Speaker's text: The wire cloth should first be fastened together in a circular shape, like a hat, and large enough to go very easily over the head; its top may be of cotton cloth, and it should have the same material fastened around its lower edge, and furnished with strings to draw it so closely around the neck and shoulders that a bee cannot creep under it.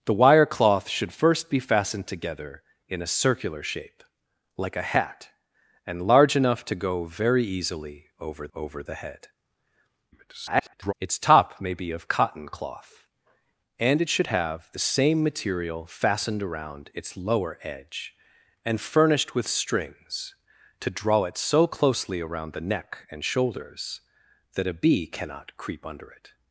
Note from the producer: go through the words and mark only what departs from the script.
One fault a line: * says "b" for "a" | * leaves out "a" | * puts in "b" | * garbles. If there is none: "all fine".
* puts in "over"
* garbles